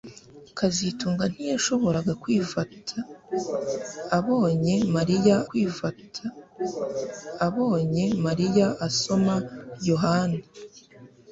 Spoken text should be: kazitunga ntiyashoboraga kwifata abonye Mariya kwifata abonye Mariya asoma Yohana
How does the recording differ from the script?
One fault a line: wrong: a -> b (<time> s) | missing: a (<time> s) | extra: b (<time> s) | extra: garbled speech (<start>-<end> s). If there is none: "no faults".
no faults